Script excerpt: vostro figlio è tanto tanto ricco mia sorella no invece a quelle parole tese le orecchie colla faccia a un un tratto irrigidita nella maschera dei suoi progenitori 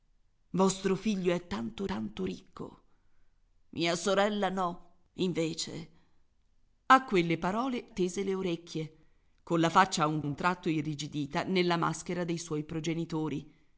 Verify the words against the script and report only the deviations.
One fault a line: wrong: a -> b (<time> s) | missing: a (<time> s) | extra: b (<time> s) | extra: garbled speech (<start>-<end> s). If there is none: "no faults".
no faults